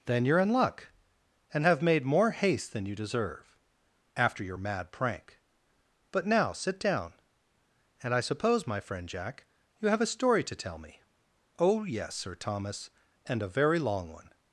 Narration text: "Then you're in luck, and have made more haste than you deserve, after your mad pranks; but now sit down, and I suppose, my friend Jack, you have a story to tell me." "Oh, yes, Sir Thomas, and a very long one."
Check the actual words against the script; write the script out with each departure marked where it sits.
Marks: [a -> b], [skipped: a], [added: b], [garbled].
"Then you're in luck, and have made more haste than you deserve, after your mad [pranks; -> prank] but now sit down, and I suppose, my friend Jack, you have a story to tell me." "Oh, yes, Sir Thomas, and a very long one."